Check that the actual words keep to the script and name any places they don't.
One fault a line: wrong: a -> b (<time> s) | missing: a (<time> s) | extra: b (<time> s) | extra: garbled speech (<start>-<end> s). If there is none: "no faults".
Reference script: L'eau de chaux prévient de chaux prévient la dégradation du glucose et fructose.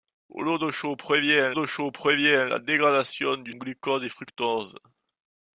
no faults